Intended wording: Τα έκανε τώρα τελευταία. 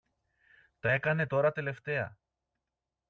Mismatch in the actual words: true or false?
false